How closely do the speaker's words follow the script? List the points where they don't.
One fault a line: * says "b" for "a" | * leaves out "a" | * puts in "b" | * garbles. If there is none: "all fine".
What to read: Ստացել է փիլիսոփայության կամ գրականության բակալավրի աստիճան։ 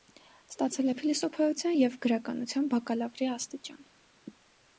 * says "և" for "կամ"